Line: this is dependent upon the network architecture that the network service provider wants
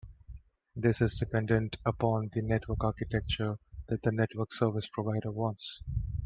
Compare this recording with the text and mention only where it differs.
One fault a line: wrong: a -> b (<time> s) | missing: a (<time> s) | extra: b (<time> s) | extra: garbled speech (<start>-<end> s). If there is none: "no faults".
no faults